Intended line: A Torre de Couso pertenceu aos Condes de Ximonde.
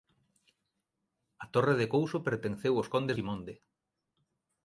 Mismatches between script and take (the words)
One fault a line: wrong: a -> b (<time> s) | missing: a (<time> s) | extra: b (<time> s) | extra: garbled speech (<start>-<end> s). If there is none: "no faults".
missing: de (3.2 s)